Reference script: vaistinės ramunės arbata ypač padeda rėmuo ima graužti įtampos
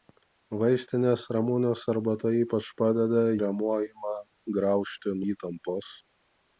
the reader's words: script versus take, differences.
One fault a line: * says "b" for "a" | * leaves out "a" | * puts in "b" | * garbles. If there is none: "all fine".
all fine